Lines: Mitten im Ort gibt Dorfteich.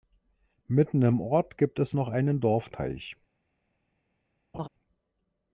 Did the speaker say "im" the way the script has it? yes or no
yes